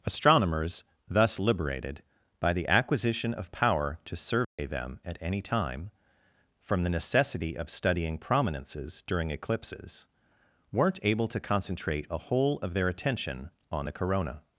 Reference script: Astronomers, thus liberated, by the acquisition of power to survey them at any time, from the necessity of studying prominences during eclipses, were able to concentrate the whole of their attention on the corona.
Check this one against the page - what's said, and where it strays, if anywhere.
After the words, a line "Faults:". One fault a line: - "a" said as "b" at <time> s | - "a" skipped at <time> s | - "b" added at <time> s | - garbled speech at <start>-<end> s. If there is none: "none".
Astronomers, thus liberated, by the acquisition of power to survey them at any time, from the necessity of studying prominences during eclipses, weren't able to concentrate a whole of their attention on the corona.
Faults:
- "were" said as "weren't" at 10.7 s
- "the" said as "a" at 12.1 s